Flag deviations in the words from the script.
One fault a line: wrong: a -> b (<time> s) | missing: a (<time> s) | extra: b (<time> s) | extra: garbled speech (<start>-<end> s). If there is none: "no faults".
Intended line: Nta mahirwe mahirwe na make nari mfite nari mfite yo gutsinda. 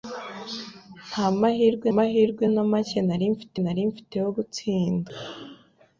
no faults